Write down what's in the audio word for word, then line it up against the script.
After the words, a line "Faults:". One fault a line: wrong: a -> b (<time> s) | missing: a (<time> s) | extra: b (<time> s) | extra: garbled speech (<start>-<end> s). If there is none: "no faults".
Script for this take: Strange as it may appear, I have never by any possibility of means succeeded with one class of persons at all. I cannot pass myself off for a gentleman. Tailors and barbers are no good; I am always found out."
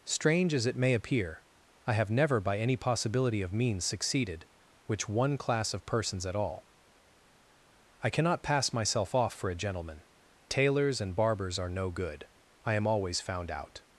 Strange as it may appear, I have never by any possibility of means succeeded which one class of persons at all. I cannot pass myself off for a gentleman. Tailors and barbers are no good; I am always found out."
Faults:
wrong: with -> which (4.8 s)